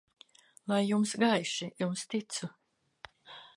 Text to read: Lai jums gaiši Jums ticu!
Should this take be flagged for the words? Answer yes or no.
no